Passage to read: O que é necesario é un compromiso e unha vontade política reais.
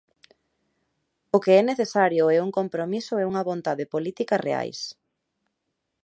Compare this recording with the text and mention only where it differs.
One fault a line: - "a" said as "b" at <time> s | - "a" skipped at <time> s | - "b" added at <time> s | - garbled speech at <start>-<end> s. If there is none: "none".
none